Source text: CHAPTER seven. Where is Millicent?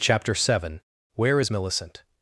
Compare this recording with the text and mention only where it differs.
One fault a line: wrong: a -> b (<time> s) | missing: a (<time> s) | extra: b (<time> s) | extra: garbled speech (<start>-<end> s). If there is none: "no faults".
no faults